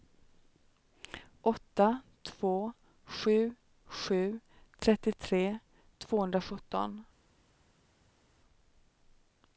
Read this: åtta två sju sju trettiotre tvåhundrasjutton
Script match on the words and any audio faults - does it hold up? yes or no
yes